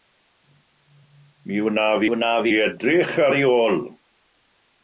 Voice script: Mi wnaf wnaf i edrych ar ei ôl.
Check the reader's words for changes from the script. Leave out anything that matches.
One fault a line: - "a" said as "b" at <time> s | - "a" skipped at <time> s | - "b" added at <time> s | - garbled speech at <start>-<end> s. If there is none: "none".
none